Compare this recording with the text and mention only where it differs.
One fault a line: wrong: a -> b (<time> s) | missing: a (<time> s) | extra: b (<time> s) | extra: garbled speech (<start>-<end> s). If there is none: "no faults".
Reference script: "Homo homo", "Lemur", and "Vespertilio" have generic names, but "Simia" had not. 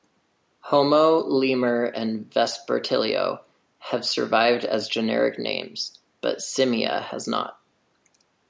missing: homo (1.2 s)
extra: survived as (4.0 s)
wrong: had -> has (7.0 s)